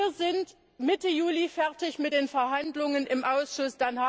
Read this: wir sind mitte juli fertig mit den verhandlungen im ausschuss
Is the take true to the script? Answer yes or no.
yes